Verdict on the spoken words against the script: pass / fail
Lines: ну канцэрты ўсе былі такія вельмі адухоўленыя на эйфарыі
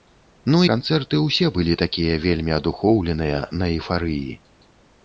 pass